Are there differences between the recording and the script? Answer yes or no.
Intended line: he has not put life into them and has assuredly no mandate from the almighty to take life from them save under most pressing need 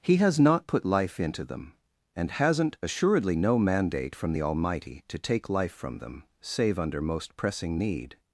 yes